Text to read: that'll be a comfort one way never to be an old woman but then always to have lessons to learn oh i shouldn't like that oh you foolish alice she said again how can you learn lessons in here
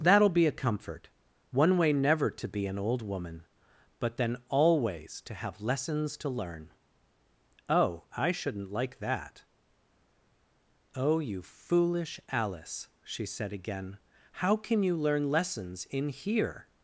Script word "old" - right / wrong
right